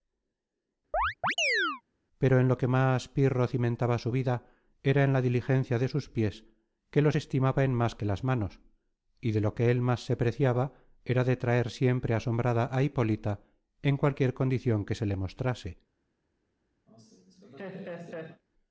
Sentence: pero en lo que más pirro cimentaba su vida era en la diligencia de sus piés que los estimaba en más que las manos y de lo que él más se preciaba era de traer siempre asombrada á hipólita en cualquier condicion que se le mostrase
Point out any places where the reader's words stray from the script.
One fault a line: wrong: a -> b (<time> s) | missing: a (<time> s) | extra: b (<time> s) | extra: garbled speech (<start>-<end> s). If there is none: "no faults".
no faults